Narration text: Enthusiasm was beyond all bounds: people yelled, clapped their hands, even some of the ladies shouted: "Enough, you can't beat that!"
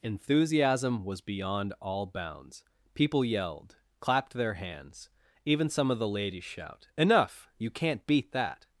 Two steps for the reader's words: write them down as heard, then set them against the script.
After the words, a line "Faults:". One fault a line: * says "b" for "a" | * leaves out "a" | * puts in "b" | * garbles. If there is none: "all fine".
Enthusiasm was beyond all bounds: people yelled, clapped their hands, even some of the ladies shout: "Enough, you can't beat that!"
Faults:
* says "shout" for "shouted"